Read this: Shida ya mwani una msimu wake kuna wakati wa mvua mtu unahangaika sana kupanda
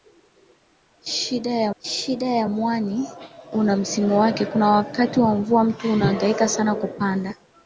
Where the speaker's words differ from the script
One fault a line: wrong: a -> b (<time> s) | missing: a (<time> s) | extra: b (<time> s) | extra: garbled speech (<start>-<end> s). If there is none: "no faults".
extra: shida ya (1.8 s)